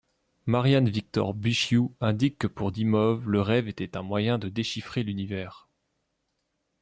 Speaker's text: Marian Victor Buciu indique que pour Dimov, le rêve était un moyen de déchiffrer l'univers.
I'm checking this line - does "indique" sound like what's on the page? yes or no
yes